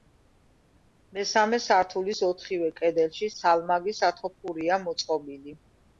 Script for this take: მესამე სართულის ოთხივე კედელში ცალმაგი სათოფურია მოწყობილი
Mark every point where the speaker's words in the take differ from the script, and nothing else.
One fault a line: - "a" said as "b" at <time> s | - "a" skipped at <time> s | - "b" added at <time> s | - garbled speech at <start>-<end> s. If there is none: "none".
none